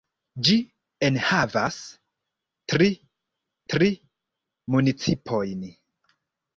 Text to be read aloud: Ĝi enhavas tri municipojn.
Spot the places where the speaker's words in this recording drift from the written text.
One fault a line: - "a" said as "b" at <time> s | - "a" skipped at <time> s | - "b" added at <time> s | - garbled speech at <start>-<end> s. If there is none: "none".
- "tri" added at 3.7 s